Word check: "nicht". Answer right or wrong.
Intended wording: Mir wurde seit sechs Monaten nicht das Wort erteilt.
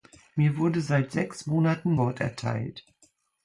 wrong